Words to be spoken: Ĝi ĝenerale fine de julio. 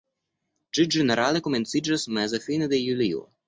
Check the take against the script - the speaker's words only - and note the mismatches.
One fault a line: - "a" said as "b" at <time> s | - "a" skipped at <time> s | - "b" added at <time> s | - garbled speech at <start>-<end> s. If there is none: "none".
- "komenciĝas meze" added at 1.5 s